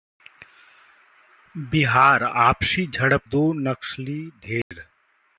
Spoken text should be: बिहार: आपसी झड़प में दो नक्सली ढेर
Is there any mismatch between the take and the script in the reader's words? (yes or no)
yes